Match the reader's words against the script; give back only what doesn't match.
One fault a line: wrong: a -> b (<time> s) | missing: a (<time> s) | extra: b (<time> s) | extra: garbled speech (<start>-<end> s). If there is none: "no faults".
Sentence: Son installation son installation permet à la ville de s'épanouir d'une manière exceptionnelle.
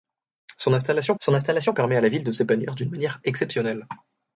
no faults